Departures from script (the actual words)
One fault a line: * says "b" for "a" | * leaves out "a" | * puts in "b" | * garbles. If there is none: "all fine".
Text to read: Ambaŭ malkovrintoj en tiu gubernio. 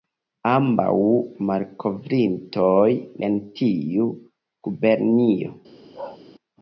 all fine